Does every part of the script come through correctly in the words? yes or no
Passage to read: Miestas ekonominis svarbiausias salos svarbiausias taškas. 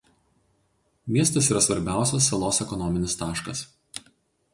no